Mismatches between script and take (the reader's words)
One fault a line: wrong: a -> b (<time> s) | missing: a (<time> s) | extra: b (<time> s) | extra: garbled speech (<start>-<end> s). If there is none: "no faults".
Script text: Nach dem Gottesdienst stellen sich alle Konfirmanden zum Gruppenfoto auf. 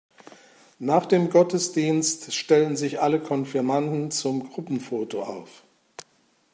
no faults